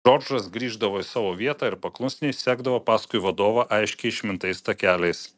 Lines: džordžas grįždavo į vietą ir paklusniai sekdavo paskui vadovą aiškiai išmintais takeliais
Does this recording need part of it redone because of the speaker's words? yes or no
yes